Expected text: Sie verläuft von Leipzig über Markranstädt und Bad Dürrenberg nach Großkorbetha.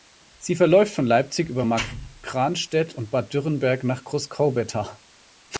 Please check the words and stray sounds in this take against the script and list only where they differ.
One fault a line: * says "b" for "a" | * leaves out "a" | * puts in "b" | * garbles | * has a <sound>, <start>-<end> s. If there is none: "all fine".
all fine